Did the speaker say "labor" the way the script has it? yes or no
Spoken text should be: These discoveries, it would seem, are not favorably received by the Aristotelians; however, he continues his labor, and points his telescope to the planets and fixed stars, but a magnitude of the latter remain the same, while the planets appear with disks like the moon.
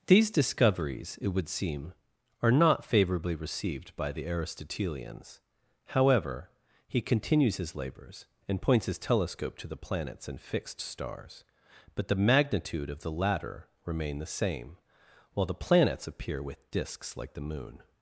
no